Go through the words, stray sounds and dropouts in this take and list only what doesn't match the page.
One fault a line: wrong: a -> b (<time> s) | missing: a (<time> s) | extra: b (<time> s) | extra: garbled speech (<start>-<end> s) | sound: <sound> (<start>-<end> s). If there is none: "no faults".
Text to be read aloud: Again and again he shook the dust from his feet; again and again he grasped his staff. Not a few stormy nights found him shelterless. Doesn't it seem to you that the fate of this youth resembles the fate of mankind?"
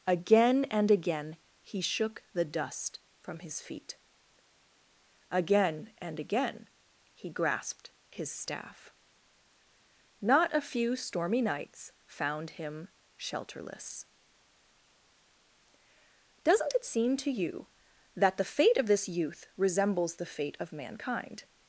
no faults